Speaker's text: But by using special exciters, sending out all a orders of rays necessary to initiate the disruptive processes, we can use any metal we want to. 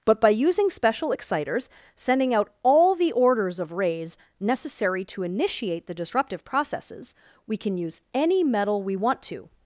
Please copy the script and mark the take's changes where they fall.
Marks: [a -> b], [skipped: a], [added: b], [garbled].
But by using special exciters, sending out all [a -> the] orders of rays necessary to initiate the disruptive processes, we can use any metal we want to.